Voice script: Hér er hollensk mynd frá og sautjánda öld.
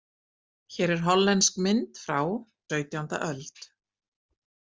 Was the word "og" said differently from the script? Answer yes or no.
yes